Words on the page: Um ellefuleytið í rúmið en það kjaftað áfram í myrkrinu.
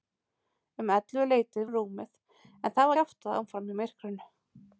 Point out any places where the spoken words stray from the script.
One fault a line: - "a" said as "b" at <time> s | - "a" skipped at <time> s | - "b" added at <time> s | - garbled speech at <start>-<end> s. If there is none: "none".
none